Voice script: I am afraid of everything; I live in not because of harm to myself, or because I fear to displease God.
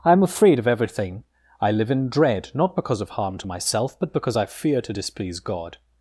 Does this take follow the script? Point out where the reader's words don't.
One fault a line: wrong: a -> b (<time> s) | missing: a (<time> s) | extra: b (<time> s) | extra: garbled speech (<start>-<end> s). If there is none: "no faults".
extra: dread (2.1 s)
wrong: or -> but (4.0 s)